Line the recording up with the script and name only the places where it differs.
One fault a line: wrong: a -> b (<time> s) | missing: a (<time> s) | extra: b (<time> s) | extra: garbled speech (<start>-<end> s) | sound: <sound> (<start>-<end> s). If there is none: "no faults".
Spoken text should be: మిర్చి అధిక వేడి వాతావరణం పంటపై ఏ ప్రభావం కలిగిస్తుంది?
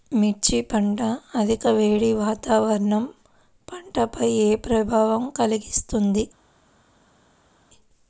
extra: పంట (0.6 s)